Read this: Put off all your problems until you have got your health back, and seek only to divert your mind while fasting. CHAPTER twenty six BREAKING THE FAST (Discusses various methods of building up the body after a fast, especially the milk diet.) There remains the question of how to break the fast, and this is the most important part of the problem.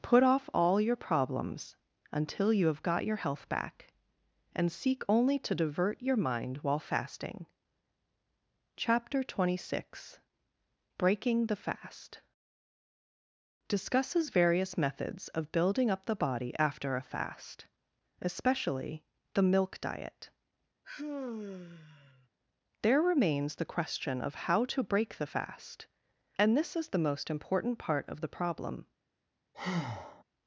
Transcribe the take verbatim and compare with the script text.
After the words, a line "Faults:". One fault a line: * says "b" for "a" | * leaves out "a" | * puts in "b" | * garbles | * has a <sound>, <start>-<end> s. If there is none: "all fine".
Put off all your problems until you have got your health back, and seek only to divert your mind while fasting. CHAPTER twenty six BREAKING THE FAST (Discusses various methods of building up the body after a fast, especially the milk diet.) There remains the question of how to break the fast, and this is the most important part of the problem.
Faults:
* has a sigh, 20.8-22.3 s
* has a breath, 29.5-30.2 s